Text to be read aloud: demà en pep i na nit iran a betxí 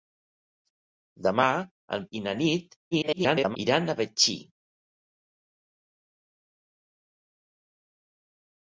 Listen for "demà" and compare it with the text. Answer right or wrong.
right